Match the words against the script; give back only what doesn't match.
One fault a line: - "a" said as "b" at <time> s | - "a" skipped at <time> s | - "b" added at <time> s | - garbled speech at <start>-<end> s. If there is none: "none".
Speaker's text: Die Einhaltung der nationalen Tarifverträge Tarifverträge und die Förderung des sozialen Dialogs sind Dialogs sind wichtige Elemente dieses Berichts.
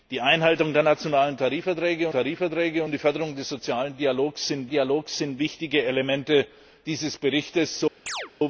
none